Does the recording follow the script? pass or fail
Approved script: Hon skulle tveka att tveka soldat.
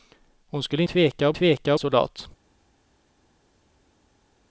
pass